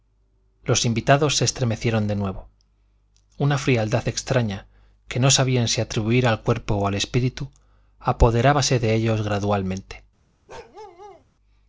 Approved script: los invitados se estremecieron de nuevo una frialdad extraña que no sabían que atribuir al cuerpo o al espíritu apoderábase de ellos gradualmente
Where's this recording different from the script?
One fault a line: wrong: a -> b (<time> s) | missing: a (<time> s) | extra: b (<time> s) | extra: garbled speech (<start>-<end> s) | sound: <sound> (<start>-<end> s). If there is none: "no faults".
wrong: que -> si (5.7 s)
sound: bark (10.5-11.2 s)